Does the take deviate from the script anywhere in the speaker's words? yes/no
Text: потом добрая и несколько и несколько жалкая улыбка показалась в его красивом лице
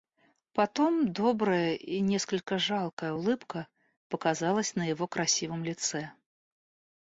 yes